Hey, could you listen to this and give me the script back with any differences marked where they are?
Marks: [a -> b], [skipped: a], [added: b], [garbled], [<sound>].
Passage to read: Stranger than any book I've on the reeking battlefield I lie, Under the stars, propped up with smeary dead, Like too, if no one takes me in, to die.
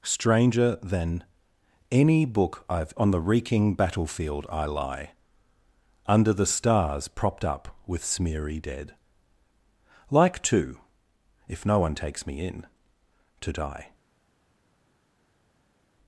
Stranger than any book I've on the reeking battlefield I lie, Under the stars, propped up with smeary dead, Like too, if no one takes me in, to die.